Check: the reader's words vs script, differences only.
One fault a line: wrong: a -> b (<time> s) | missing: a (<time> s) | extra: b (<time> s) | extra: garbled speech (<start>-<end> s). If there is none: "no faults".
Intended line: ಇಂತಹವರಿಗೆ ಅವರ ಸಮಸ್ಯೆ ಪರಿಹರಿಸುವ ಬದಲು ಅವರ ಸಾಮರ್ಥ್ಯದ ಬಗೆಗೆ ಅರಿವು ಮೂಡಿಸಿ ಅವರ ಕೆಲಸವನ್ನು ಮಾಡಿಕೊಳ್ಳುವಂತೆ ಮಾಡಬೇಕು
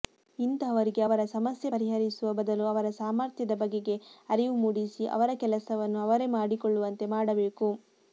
extra: ಅವರೇ (6.1 s)